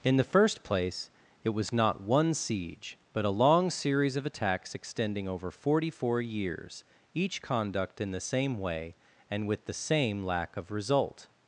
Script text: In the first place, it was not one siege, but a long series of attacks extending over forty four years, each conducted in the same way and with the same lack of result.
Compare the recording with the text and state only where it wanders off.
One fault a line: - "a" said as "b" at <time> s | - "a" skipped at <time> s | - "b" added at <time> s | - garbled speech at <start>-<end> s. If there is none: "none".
- "conducted" said as "conduct" at 7.4 s